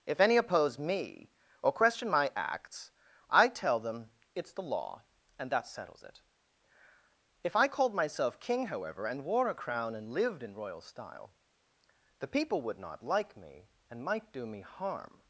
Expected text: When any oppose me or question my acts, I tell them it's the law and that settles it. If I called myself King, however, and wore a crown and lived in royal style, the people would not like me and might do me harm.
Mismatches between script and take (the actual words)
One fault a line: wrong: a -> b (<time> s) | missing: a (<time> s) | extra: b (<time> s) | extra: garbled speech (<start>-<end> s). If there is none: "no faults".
wrong: When -> If (0.1 s)